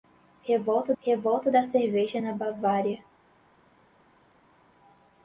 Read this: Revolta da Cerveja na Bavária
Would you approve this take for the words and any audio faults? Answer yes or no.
no